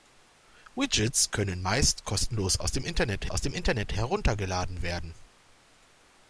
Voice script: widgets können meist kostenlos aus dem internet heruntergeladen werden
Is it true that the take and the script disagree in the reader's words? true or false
true